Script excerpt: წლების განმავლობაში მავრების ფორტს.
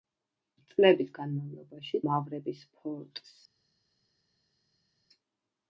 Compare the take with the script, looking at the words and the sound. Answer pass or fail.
pass